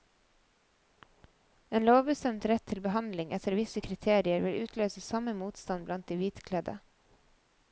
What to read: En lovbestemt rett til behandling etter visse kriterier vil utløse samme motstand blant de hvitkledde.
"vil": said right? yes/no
yes